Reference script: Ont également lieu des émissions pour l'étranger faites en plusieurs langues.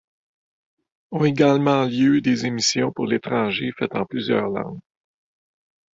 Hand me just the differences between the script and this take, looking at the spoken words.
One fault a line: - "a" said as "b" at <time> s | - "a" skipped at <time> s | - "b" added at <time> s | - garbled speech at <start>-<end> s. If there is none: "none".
none